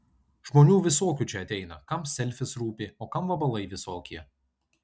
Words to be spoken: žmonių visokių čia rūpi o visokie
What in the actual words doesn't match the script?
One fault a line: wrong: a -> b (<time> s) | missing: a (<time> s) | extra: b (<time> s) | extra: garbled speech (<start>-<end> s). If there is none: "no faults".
extra: ateina kam selfis (1.4 s)
extra: kam vabalai (3.2 s)